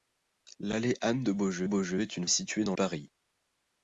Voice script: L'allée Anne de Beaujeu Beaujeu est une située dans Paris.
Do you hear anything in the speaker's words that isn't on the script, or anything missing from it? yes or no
no